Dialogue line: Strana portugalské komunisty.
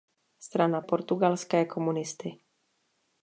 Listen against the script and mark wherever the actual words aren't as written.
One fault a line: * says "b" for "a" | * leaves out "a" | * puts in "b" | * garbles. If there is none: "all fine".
all fine